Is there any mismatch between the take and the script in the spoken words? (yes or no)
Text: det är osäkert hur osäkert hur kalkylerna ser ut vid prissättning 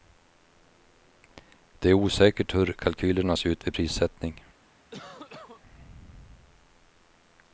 yes